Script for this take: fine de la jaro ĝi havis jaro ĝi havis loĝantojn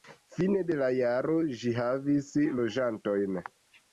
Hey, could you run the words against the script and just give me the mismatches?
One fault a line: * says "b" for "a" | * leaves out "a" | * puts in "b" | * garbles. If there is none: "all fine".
* leaves out "jaro ĝi havis"